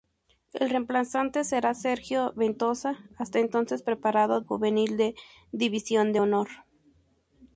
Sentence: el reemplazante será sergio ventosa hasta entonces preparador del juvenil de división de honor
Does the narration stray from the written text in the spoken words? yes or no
yes